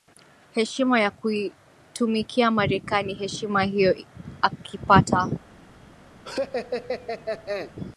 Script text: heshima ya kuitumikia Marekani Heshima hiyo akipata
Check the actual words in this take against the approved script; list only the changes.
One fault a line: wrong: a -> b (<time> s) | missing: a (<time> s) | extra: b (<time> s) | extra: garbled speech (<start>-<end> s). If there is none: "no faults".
no faults